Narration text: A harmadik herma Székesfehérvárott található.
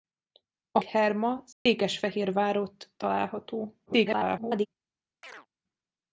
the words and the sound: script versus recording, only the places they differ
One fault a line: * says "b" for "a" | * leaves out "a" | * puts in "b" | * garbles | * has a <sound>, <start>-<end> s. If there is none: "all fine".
* leaves out "harmadik"
* has a dropout, 1.5-1.7 s
* garbles
* has a chirp, 5.2-5.5 s